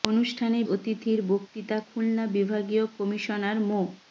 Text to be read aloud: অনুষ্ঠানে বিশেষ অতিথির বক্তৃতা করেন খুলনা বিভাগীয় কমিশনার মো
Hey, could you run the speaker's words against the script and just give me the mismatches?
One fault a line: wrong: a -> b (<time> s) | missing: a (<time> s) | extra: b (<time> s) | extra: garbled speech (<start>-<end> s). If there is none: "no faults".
missing: বিশেষ (0.6 s)
missing: করেন (1.8 s)